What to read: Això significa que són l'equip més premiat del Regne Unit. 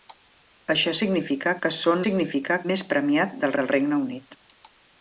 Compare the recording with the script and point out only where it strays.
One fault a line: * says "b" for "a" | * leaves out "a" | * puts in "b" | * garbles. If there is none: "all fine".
* says "significa" for "l'equip"
* puts in "del"